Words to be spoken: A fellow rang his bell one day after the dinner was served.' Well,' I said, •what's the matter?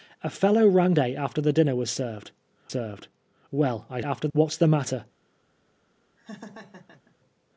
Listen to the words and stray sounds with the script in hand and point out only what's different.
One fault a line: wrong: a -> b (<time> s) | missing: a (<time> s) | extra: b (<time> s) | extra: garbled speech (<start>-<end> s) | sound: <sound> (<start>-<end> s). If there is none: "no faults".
missing: his bell one (0.9 s)
extra: served (2.7 s)
wrong: said -> after (4.0 s)
sound: laugh (6.2-7.2 s)